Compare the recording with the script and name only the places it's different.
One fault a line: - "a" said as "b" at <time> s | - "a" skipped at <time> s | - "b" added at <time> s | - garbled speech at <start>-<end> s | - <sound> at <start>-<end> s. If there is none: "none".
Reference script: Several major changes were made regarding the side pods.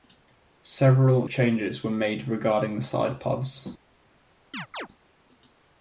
- "major" skipped at 1.3 s
- chirp at 4.5-4.9 s